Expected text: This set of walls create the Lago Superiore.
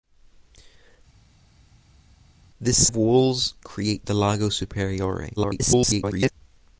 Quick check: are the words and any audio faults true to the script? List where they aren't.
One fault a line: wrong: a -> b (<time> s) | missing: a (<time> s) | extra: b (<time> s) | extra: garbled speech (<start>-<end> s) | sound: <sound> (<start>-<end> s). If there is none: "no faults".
missing: set (2.9 s)
extra: garbled speech (5.4-6.3 s)